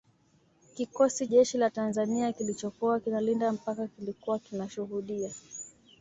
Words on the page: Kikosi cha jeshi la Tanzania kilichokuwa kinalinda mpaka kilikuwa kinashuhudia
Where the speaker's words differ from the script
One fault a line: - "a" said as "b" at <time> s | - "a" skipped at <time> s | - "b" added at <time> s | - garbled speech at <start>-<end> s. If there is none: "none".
- "cha" skipped at 1.3 s